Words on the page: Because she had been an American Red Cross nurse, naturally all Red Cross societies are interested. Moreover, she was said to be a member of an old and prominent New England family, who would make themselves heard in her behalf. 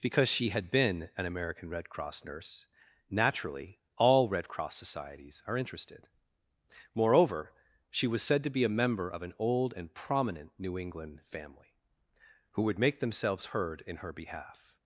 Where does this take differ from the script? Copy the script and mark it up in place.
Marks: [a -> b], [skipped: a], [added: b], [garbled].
Because she had been an American Red Cross nurse, naturally all Red Cross societies are interested. Moreover, she was said to be a member of an old and prominent New England family, who would make themselves heard in her behalf.